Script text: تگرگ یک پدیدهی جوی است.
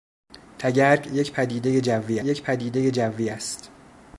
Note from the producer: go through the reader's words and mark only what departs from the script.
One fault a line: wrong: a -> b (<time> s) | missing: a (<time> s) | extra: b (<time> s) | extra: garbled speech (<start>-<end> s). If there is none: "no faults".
extra: یک پدیدهی جوی (2.2 s)